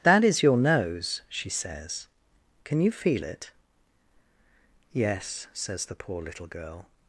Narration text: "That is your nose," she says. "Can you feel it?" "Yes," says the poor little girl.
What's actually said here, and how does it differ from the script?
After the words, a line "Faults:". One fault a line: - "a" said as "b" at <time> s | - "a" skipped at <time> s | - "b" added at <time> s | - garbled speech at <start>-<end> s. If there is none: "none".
"That is your nose," she says. "Can you feel it?" "Yes," says the poor little girl.
Faults:
none